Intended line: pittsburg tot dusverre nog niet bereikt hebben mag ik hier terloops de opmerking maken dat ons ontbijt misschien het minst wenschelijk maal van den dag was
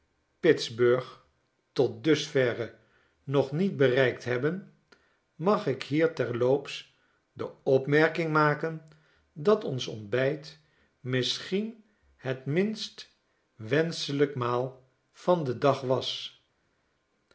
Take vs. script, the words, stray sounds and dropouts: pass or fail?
pass